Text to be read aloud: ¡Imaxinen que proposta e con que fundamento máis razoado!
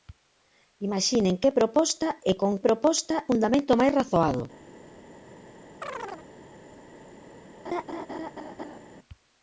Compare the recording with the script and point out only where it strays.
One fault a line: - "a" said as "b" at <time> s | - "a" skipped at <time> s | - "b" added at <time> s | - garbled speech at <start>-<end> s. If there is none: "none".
- "que" said as "proposta" at 2.7 s